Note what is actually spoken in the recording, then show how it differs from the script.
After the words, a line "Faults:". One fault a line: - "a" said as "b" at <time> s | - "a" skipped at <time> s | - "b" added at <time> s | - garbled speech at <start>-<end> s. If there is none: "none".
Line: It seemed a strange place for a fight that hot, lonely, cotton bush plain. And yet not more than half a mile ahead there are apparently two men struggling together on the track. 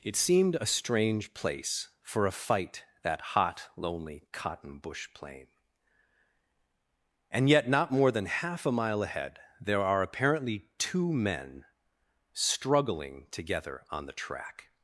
It seemed a strange place for a fight that hot, lonely, cotton bush plain. And yet not more than half a mile ahead there are apparently two men struggling together on the track.
Faults:
none